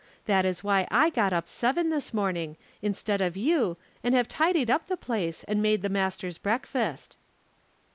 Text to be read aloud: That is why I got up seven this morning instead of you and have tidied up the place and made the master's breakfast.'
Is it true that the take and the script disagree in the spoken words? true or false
false